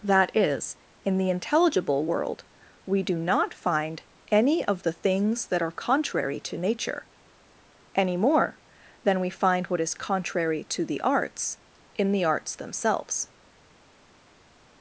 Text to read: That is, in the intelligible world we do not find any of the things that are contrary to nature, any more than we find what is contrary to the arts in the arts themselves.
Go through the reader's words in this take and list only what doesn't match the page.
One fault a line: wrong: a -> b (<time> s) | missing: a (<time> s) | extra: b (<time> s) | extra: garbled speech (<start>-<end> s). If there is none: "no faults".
no faults